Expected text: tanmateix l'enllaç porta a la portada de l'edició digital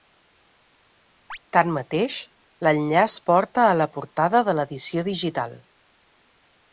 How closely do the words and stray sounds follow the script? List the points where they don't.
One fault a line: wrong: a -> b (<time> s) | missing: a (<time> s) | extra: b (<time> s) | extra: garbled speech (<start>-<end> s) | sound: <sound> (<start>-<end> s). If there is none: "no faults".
sound: chirp (1.3-1.4 s)